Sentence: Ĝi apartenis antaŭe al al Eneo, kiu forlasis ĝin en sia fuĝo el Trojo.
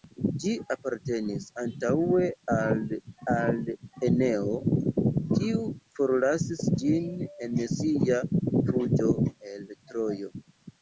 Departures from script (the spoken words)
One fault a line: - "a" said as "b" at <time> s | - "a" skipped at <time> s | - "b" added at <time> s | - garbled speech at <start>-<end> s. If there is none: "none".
none